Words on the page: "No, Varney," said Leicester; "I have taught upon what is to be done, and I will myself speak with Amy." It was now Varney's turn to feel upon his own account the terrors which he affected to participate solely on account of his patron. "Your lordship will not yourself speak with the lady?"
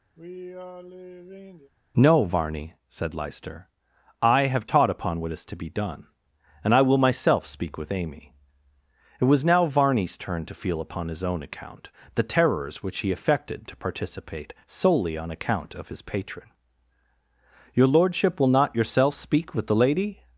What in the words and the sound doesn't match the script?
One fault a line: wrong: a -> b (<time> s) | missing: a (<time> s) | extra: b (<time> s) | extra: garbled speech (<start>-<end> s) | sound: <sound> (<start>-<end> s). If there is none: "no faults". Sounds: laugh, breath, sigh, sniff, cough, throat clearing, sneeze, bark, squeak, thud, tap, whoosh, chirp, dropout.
sound: sigh (0.2-1.7 s)